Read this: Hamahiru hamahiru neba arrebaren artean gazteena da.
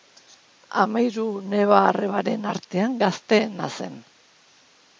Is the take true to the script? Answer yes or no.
no